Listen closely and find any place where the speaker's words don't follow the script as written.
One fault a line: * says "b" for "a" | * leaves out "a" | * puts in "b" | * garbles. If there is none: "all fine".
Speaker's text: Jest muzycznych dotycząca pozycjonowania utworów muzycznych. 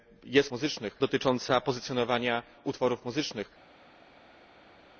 all fine